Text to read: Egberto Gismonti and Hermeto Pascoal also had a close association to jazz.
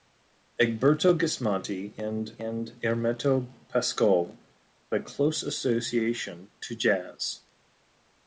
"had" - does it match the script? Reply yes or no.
no